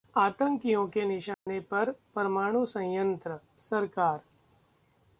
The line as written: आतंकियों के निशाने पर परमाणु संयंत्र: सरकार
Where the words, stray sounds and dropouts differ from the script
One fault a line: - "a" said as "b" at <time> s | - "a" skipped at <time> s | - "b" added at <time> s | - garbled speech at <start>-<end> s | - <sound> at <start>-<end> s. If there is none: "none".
- dropout at 1.3-1.5 s